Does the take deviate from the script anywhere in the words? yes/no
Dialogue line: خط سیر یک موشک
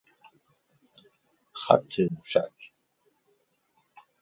yes